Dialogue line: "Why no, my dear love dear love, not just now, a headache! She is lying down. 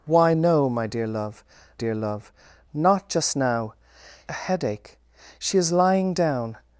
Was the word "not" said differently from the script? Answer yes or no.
no